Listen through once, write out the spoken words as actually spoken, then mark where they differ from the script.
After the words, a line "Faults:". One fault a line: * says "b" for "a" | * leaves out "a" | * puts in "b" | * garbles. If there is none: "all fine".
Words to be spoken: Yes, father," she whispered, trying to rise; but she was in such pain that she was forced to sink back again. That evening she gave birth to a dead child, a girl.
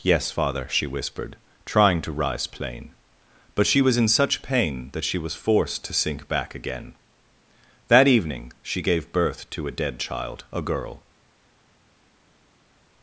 Yes, father," she whispered, trying to rise; plain but she was in such pain that she was forced to sink back again. That evening she gave birth to a dead child, a girl.
Faults:
* puts in "plain"